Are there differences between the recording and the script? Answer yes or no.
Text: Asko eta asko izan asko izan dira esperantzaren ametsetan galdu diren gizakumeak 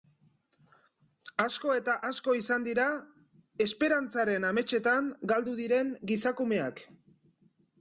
yes